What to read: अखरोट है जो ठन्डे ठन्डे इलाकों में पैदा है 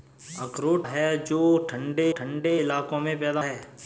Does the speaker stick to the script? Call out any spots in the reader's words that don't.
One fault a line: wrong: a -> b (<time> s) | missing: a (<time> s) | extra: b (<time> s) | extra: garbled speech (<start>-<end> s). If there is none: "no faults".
no faults